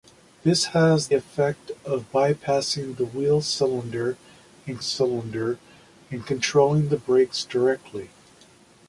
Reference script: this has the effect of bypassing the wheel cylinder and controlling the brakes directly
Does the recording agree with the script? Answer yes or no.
no